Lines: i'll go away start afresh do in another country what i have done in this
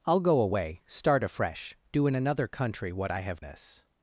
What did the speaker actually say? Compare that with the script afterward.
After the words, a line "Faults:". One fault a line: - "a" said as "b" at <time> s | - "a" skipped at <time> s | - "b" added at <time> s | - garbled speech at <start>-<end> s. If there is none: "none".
i'll go away start afresh do in another country what i have this
Faults:
- "done in" skipped at 3.4 s